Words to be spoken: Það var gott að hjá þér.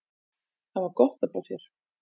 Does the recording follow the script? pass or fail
pass